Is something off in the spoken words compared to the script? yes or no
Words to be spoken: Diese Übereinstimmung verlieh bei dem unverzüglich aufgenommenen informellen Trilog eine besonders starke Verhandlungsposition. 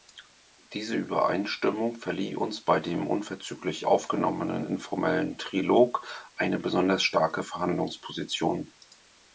yes